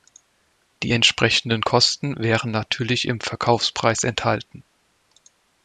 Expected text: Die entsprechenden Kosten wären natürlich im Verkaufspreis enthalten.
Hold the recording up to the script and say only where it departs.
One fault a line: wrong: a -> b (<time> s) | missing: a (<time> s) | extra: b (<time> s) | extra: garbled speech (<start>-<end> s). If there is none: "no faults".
no faults